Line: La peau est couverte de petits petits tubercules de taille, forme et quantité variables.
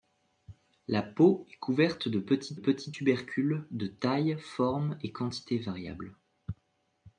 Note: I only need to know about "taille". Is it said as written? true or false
true